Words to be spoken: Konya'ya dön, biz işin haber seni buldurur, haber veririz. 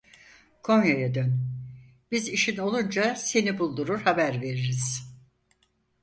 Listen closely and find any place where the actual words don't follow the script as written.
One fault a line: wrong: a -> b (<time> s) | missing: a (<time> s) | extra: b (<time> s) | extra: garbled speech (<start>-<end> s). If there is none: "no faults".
wrong: haber -> olunca (2.6 s)